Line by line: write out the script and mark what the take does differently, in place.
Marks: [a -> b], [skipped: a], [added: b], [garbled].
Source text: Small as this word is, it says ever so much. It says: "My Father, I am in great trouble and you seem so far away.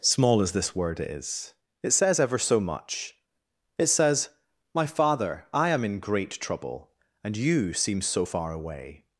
Small as this word is, it says ever so much. It says: "My Father, I am in great trouble and you seem so far away.